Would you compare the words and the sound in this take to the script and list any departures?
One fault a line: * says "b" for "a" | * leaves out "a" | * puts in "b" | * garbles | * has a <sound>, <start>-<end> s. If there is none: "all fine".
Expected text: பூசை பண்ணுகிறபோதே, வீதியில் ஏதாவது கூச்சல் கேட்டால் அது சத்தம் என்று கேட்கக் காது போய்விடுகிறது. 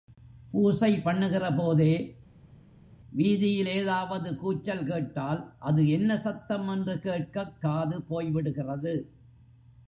* puts in "என்ன"